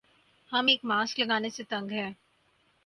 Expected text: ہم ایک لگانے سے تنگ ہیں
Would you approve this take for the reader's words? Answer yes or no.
no